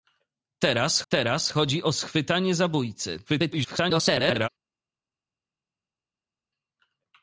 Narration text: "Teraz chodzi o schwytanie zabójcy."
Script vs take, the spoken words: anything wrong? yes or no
yes